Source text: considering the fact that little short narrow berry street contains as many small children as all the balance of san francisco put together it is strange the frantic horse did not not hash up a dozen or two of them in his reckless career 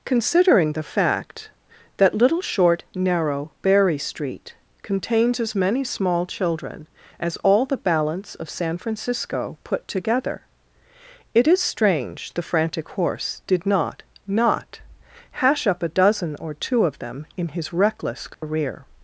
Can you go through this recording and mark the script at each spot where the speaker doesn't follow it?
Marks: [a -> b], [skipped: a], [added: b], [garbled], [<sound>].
considering the fact that little short narrow berry street contains as many small children as all the balance of san francisco put together it is strange the frantic horse did not not hash up a dozen or two of them in his reckless career [dropout]